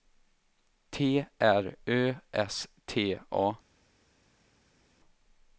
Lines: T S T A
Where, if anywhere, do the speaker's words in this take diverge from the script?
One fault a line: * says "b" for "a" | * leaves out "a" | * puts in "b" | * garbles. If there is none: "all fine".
* puts in "R Ö"